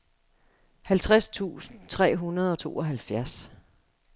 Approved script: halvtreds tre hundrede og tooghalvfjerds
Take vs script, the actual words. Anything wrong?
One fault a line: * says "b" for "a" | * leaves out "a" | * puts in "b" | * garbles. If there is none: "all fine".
* puts in "tusind"